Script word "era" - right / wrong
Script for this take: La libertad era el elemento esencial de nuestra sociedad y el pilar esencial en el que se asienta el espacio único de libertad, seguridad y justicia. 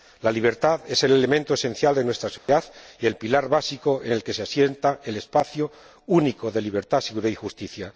wrong